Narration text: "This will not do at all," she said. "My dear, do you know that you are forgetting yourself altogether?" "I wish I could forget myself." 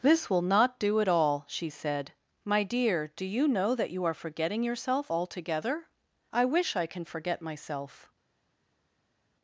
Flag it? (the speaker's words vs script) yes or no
yes